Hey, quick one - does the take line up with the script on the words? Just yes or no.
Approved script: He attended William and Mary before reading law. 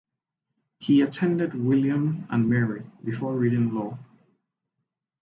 yes